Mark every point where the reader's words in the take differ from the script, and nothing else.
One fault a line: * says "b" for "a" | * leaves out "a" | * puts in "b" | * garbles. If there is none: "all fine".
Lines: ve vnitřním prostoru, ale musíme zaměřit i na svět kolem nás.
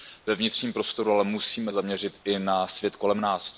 all fine